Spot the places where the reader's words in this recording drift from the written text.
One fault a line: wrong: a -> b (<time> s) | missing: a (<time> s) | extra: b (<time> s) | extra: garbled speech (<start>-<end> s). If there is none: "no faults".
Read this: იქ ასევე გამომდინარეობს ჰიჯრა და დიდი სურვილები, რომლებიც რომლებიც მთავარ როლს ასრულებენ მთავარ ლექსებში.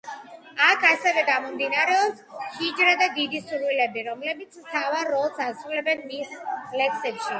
wrong: იქ -> აქ (0.7 s)
missing: რომლებიც (4.6 s)
wrong: მთავარ -> მის (6.1 s)